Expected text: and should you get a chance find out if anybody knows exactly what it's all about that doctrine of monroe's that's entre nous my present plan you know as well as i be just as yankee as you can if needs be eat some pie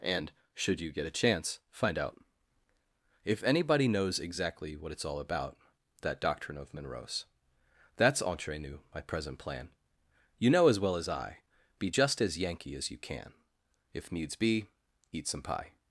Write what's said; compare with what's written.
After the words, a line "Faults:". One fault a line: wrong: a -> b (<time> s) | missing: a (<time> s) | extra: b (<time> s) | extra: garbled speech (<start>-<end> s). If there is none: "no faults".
and should you get a chance find out if anybody knows exactly what it's all about that doctrine of monroe's that's entre nous my present plan you know as well as i be just as yankee as you can if needs be eat some pie
Faults:
no faults